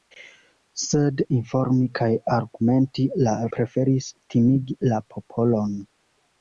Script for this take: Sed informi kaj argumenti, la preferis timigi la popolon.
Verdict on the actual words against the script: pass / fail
pass